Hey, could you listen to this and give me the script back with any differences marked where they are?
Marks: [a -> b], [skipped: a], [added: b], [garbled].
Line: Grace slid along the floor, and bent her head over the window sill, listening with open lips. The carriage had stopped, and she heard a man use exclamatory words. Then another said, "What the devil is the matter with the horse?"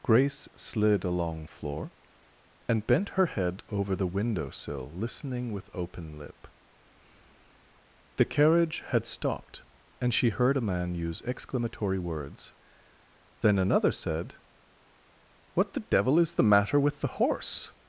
Grace slid along [skipped: the] floor, and bent her head over the window sill, listening with open [lips. -> lip] The carriage had stopped, and she heard a man use exclamatory words. Then another said, "What the devil is the matter with the horse?"